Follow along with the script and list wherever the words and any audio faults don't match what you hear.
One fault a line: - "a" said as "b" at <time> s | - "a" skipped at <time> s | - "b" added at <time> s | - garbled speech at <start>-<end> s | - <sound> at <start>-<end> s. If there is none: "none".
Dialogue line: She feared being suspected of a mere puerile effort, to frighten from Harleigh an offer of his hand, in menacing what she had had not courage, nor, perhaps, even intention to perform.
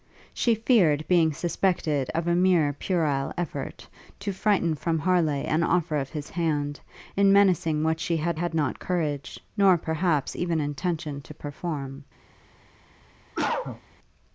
- cough at 13.3-13.8 s